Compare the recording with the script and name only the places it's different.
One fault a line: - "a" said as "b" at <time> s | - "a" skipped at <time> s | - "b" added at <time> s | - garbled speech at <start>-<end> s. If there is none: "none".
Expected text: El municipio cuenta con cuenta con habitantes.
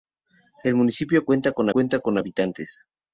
none